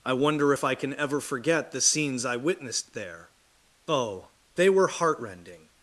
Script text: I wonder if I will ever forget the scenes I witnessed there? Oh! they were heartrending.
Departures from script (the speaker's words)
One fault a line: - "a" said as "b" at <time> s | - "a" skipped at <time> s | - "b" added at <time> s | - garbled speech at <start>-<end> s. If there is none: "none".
- "will" said as "can" at 0.7 s